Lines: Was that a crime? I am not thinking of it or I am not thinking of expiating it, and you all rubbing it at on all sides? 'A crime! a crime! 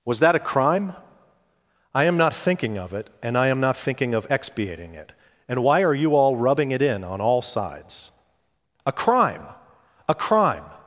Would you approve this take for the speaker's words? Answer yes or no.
no